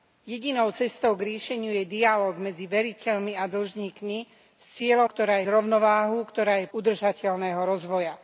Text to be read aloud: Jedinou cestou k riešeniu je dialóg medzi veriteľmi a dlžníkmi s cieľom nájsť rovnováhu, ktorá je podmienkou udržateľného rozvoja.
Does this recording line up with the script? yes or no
no